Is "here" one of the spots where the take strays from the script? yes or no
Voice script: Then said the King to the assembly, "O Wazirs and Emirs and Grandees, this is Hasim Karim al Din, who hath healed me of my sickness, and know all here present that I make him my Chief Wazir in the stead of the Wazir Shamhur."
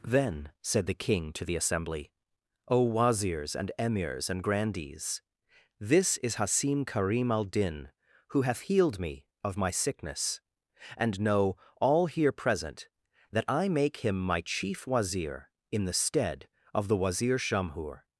no